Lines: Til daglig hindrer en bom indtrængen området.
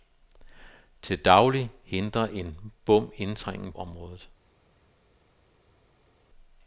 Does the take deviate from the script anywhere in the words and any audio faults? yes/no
no